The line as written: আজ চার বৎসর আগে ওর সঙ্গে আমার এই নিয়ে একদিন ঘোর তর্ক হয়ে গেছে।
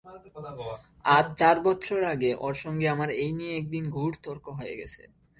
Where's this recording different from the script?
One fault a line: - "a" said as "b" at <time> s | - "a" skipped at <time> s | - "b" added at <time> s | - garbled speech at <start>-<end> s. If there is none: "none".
none